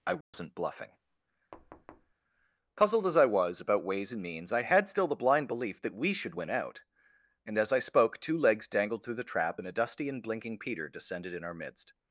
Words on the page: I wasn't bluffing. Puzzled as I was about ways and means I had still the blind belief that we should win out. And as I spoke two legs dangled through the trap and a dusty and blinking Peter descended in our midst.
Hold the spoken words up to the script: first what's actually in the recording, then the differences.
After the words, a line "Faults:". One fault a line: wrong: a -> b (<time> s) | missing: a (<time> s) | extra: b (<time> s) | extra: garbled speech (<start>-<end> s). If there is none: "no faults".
I wasn't bluffing. Puzzled as I was about ways and means I had still the blind belief that we should win out. And as I spoke two legs dangled through the trap and a dusty and blinking Peter descended in our midst.
Faults:
no faults